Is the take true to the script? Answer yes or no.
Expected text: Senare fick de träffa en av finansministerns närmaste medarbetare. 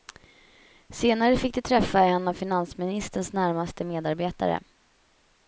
yes